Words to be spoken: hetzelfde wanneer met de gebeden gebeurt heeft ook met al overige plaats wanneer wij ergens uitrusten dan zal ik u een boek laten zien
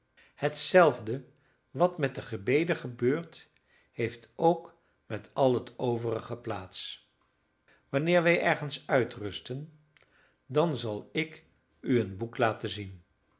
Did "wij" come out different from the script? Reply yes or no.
no